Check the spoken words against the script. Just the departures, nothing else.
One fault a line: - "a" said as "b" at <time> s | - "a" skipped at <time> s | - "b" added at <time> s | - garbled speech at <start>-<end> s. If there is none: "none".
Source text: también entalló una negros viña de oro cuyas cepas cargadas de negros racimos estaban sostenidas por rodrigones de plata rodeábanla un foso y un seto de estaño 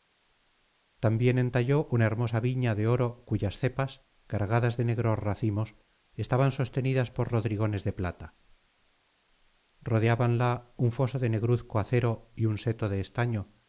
- "negros" said as "hermosa" at 2.0 s
- "de negruzco acero" added at 11.2 s